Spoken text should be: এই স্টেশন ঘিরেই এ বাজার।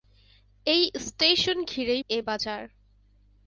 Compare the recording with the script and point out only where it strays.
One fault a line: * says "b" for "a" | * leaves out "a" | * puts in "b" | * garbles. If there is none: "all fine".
all fine